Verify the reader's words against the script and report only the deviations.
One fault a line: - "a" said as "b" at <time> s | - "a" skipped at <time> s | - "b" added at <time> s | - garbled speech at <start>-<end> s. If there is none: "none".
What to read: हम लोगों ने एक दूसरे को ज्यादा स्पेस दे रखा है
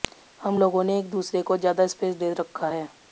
none